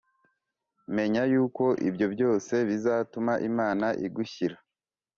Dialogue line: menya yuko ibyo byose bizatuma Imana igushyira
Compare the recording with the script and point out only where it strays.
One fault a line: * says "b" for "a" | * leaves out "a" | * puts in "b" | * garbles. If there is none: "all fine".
all fine